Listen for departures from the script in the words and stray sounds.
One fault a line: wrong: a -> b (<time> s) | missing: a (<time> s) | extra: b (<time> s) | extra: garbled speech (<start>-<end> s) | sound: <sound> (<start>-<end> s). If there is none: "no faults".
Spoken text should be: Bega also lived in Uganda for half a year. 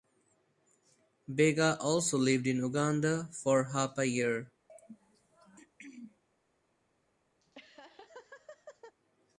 sound: throat clearing (4.7-6.2 s)
sound: laugh (7.4-9.0 s)